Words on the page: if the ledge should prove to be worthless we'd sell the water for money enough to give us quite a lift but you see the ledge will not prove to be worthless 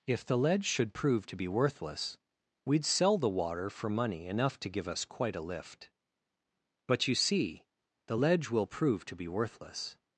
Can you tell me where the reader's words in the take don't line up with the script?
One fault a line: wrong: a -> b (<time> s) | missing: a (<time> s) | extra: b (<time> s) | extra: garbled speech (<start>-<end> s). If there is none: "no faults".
missing: not (8.6 s)